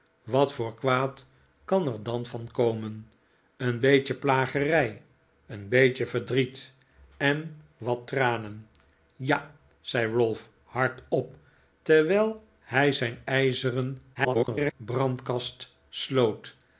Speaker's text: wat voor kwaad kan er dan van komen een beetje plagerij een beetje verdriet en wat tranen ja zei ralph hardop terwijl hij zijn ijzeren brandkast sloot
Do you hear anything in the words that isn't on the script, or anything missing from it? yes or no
yes